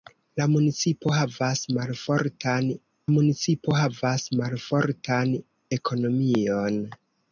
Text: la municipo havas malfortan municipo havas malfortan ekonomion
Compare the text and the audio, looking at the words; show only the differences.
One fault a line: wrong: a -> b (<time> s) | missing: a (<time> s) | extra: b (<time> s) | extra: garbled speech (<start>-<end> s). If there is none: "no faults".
no faults